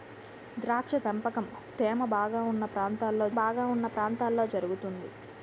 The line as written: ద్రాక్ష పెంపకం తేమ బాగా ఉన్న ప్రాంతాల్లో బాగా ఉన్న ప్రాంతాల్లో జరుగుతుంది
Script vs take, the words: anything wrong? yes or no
no